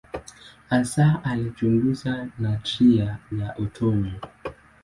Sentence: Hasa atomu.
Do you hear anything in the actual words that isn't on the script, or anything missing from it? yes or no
yes